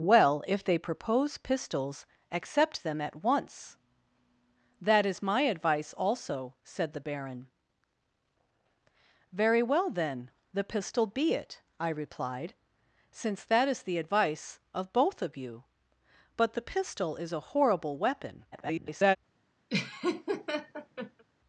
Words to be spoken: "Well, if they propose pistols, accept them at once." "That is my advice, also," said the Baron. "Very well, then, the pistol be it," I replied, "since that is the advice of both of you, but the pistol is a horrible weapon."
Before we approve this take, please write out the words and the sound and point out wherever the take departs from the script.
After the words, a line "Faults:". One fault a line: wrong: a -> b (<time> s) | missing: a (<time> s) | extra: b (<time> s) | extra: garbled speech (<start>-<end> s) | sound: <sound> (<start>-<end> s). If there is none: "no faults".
"Well, if they propose pistols, accept them at once." "That is my advice, also," said the Baron. "Very well, then, the pistol be it," I replied, "since that is the advice of both of you, but the pistol is a horrible weapon." [garbled]
Faults:
extra: garbled speech (18.5-19.2 s)
sound: laugh (19.7-21.2 s)